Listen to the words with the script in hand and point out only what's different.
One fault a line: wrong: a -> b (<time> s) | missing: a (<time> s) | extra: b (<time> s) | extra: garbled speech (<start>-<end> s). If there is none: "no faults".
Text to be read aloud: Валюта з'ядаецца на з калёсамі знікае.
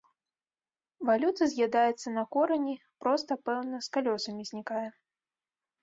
extra: корані проста пэўна (2.4 s)